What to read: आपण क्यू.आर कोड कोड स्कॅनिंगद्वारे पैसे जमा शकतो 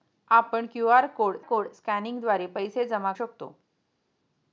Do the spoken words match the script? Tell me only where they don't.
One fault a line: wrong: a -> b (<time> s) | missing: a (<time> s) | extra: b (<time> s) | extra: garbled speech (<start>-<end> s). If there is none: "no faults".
no faults